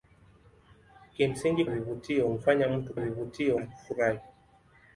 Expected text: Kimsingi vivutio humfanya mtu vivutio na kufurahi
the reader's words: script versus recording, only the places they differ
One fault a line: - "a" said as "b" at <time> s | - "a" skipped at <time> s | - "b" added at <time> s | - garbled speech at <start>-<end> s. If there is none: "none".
none